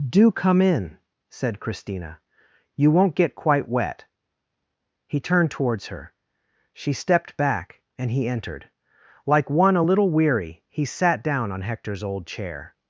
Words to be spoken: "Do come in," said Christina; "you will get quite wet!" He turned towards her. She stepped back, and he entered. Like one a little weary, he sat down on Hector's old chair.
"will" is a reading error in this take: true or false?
true